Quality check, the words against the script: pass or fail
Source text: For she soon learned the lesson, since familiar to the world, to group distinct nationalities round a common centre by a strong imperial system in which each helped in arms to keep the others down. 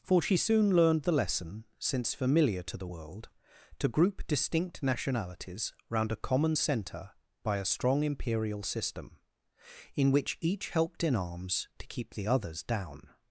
pass